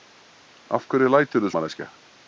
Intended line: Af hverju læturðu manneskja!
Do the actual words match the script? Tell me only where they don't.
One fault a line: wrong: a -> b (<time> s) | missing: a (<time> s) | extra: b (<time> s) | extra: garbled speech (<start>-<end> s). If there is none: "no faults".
no faults